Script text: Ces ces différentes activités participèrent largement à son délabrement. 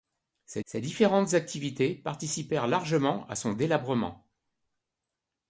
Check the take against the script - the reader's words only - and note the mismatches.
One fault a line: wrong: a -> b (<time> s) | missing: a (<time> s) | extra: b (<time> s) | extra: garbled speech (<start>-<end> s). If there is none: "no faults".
no faults